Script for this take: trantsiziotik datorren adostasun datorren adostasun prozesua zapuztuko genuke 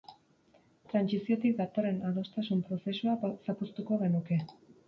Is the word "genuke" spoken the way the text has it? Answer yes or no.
yes